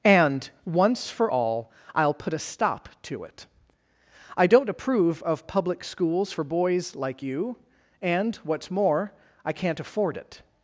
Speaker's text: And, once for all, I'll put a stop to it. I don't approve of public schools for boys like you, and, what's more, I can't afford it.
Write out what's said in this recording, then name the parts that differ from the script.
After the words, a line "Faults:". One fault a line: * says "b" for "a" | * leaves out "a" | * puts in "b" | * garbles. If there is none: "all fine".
And, once for all, I'll put a stop to it. I don't approve of public schools for boys like you, and, what's more, I can't afford it.
Faults:
all fine